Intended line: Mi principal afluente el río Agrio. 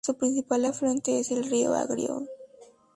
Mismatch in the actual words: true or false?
true